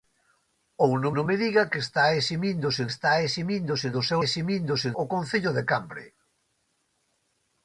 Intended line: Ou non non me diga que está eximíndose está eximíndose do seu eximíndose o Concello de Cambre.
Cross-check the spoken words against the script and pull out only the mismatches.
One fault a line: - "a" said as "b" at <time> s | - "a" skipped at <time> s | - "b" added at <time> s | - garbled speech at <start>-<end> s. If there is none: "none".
none